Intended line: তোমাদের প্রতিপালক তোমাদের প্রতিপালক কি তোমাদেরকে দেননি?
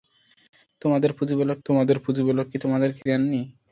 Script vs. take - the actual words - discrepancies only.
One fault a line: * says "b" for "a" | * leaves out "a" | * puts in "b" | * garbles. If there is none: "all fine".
all fine